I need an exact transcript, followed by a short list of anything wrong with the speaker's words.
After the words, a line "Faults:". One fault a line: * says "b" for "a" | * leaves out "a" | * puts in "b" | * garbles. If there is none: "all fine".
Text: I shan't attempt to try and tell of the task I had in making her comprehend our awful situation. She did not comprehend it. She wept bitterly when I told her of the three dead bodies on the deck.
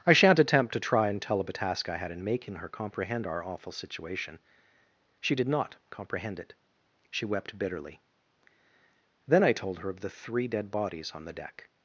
I shan't attempt to try and tell of a task I had in making her comprehend our awful situation. She did not comprehend it. She wept bitterly then I told her of the three dead bodies on the deck.
Faults:
* says "a" for "the"
* says "then" for "when"